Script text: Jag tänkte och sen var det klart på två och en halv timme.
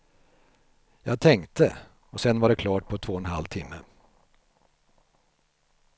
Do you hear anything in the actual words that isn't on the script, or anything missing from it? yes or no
no